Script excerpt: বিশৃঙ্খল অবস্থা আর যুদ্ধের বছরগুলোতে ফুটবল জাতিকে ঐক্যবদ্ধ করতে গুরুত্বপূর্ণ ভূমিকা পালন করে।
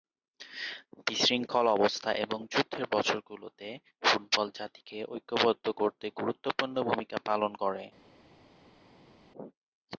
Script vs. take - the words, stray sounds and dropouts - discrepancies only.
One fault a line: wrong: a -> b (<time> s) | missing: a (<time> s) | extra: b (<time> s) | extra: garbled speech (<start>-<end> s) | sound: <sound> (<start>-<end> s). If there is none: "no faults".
wrong: আর -> এবং (2.2 s)